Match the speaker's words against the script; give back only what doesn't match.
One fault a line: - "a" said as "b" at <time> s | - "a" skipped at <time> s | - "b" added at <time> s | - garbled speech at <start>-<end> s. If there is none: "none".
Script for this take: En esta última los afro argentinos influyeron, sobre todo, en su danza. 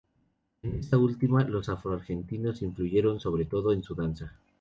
none